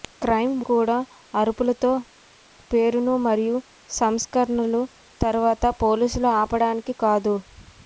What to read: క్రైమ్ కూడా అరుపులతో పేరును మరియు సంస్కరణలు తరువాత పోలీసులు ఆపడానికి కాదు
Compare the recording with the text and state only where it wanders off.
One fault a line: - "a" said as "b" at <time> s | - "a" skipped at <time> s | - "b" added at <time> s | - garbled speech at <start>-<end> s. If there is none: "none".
none